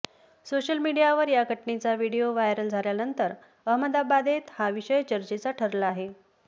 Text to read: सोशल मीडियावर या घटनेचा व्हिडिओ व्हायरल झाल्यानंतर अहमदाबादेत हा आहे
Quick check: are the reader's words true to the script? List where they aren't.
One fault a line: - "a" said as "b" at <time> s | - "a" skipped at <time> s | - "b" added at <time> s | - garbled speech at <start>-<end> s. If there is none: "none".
- "विषय चर्चेचा ठरला" added at 4.7 s